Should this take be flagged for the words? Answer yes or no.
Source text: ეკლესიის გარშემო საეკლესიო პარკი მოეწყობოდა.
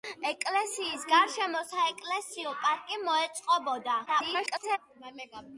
yes